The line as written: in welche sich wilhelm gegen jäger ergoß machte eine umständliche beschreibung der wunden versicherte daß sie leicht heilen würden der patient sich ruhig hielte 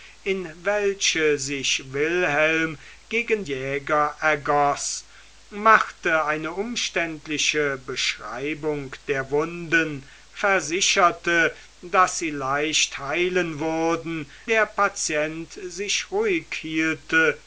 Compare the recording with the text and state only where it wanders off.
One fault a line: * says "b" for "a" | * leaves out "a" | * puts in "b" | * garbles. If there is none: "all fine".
all fine